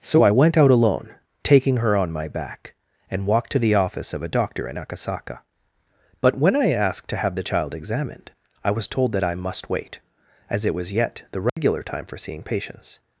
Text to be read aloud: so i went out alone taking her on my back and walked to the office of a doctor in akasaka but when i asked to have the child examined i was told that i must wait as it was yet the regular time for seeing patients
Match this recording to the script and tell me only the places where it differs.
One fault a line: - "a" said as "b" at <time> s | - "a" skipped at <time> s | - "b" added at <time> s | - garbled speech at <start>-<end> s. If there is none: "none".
none